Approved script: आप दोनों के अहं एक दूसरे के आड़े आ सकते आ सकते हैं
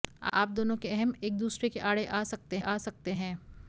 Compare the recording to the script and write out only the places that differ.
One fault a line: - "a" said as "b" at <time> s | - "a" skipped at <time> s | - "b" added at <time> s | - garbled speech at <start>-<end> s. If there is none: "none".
none